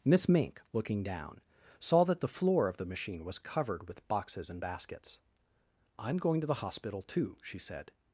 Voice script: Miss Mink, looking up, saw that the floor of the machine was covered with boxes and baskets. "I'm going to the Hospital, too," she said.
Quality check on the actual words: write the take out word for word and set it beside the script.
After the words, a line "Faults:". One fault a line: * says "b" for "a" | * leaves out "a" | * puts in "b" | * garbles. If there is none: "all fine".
Miss Mink, looking down, saw that the floor of the machine was covered with boxes and baskets. "I'm going to the Hospital, too," she said.
Faults:
* says "down" for "up"